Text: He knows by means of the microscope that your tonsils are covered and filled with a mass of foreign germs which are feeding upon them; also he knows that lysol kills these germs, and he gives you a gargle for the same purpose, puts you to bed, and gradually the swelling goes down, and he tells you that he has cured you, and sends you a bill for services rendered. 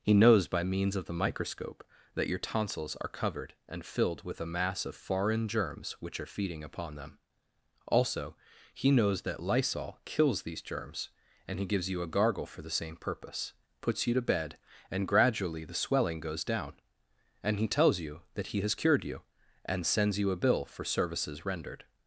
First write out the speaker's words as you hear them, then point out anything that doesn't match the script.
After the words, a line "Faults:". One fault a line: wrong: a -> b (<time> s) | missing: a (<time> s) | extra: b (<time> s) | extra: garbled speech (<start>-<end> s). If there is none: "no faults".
He knows by means of the microscope that your tonsils are covered and filled with a mass of foreign germs which are feeding upon them; also he knows that lysol kills these germs, and he gives you a gargle for the same purpose, puts you to bed, and gradually the swelling goes down, and he tells you that he has cured you, and sends you a bill for services rendered.
Faults:
no faults